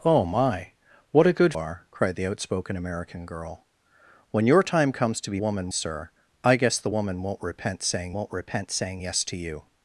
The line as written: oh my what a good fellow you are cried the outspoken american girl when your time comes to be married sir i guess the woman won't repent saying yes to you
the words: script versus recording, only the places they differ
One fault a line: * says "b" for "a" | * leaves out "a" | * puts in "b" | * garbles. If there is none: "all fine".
* leaves out "fellow you"
* says "woman" for "married"
* puts in "won't repent saying"